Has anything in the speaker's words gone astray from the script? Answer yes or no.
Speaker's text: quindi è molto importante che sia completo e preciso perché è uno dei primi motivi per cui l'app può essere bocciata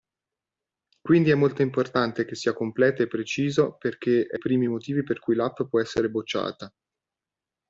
yes